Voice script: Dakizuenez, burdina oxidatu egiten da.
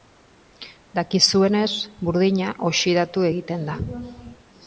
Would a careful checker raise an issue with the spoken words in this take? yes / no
no